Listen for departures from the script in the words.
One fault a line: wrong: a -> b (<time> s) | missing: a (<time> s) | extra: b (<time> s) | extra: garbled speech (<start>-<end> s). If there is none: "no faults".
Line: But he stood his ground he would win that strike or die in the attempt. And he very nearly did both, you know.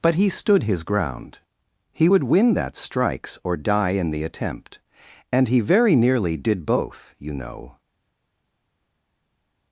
wrong: strike -> strikes (2.8 s)